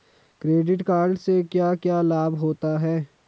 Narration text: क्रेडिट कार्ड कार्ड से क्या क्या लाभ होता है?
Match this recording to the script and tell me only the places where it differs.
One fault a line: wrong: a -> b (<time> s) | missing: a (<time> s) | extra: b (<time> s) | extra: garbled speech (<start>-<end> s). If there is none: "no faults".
missing: कार्ड (1.2 s)